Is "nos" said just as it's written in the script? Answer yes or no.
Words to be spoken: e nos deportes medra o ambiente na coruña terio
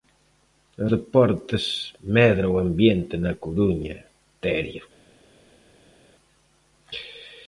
no